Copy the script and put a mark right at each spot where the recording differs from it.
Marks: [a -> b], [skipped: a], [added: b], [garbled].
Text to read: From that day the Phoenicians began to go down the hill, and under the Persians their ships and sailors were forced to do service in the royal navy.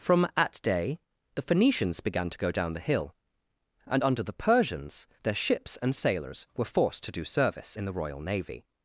From [that -> at] day the Phoenicians began to go down the hill, and under the Persians their ships and sailors were forced to do service in the royal navy.